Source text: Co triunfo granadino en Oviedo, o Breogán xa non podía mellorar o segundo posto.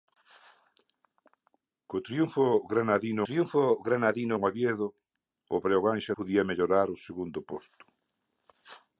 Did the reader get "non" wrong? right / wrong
wrong